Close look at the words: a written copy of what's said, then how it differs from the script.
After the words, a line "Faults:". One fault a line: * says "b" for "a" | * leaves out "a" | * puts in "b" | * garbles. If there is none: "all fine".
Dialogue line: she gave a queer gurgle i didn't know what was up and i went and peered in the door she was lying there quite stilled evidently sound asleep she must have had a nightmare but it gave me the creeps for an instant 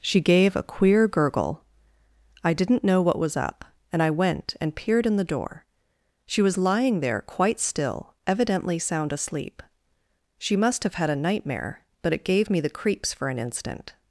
she gave a queer gurgle i didn't know what was up and i went and peered in the door she was lying there quite still evidently sound asleep she must have had a nightmare but it gave me the creeps for an instant
Faults:
* says "still" for "stilled"